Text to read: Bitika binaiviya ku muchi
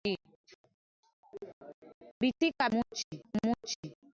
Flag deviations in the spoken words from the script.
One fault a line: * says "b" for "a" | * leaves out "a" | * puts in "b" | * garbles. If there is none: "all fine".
* says "muchi" for "binaiviya"